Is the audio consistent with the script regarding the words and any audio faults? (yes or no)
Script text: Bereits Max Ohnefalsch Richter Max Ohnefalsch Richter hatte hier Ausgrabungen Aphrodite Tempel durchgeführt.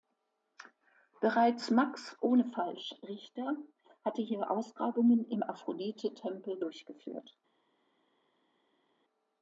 no